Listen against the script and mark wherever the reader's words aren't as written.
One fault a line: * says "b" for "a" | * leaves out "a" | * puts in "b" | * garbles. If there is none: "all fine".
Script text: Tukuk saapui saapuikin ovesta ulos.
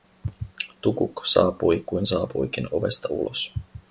* puts in "kuin"